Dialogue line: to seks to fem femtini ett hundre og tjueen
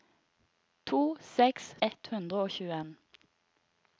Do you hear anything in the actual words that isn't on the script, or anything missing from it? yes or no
yes